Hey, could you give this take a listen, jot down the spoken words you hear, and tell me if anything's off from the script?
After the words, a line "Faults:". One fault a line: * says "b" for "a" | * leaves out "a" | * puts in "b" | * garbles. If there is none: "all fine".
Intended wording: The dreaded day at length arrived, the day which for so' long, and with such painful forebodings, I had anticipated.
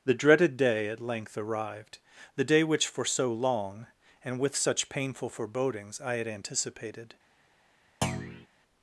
The dreaded day at length arrived, the day which for so' long, and with such painful forebodings, I had anticipated.
Faults:
all fine